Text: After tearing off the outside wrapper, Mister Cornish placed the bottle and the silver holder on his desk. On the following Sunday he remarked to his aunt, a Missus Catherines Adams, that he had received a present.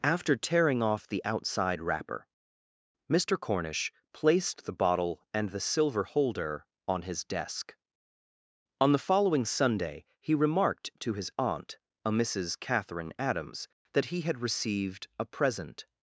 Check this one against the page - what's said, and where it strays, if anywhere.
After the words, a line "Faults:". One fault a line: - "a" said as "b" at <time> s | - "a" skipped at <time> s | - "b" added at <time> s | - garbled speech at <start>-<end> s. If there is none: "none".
After tearing off the outside wrapper, Mister Cornish placed the bottle and the silver holder on his desk. On the following Sunday he remarked to his aunt, a Missus Catherine Adams, that he had received a present.
Faults:
- "Catherines" said as "Catherine" at 12.6 s